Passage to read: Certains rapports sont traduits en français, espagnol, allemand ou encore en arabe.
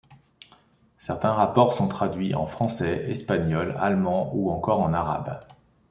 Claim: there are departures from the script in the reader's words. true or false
false